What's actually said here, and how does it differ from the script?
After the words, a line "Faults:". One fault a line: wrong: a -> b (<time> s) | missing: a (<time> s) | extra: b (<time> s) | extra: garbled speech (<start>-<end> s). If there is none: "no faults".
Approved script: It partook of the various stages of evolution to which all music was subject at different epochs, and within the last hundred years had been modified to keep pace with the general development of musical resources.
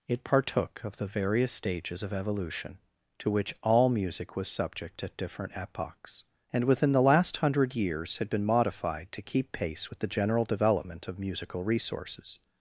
It partook of the various stages of evolution to which all music was subject at different epochs, and within the last hundred years had been modified to keep pace with the general development of musical resources.
Faults:
no faults